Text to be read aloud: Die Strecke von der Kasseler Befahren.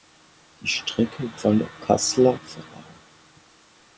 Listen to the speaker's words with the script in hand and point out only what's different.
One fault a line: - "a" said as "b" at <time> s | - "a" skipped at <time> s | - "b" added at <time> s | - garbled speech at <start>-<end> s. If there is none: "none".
none